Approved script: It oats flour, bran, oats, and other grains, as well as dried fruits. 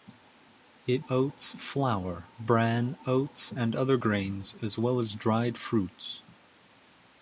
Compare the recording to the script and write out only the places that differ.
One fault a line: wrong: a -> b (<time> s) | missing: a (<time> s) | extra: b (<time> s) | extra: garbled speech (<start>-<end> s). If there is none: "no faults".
no faults